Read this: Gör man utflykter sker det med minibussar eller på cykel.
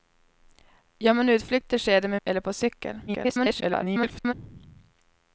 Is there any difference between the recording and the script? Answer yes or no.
yes